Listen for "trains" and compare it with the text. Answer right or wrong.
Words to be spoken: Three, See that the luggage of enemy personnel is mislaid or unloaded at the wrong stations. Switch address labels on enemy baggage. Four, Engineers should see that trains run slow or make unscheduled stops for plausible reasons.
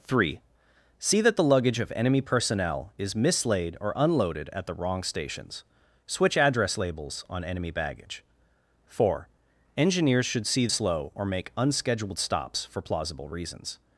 wrong